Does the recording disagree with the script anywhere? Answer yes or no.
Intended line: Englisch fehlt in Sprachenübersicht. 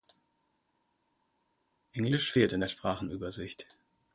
yes